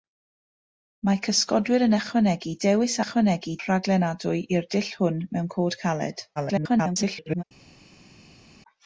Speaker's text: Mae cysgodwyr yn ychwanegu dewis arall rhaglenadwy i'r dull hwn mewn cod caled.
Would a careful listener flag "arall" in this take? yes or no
yes